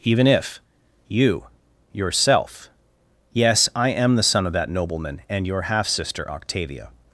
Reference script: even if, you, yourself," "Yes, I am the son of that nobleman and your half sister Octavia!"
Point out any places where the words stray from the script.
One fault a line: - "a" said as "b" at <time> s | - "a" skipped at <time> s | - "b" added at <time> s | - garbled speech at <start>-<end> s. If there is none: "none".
none